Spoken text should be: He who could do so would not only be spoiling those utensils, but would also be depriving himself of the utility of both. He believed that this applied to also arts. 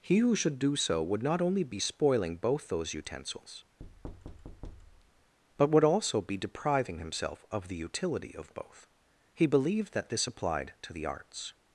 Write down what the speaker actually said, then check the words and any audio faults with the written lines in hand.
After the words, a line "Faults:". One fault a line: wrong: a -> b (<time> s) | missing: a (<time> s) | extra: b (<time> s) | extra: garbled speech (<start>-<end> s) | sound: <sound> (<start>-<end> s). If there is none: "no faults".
He who should do so would not only be spoiling both those utensils, but would also be depriving himself of the utility of both. He believed that this applied to the arts.
Faults:
wrong: could -> should (0.3 s)
extra: both (2.4 s)
sound: thud (3.8-5.3 s)
wrong: also -> the (10.9 s)